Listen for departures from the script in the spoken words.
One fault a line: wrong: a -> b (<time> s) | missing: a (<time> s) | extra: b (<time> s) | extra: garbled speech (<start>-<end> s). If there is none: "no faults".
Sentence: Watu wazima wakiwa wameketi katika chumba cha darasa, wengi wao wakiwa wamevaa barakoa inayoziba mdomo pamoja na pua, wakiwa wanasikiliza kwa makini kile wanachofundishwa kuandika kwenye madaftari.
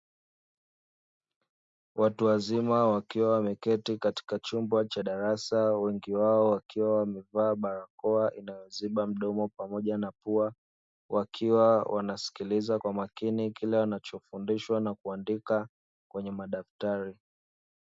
extra: na (14.8 s)